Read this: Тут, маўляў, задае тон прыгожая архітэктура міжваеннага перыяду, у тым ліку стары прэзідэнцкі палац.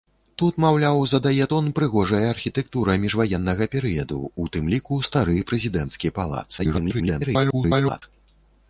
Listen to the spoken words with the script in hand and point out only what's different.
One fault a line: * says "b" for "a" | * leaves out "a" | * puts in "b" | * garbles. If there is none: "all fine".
* garbles